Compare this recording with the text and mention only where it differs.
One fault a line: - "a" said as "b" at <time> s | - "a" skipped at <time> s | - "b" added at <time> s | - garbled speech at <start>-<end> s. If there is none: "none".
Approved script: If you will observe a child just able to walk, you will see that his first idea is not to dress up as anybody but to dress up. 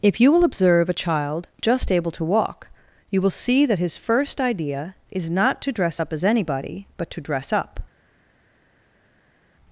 none